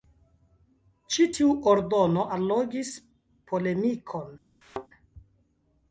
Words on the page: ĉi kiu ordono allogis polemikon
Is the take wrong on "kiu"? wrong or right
wrong